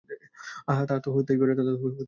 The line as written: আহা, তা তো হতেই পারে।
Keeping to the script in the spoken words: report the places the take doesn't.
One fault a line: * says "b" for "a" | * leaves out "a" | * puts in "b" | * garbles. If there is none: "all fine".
all fine